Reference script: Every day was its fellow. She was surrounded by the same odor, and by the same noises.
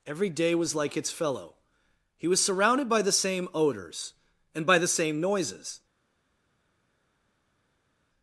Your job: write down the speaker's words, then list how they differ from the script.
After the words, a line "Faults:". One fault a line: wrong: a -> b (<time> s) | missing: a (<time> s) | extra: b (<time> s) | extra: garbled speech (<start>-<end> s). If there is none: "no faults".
Every day was like its fellow. He was surrounded by the same odors, and by the same noises.
Faults:
extra: like (0.8 s)
wrong: She -> He (2.2 s)
wrong: odor -> odors (3.5 s)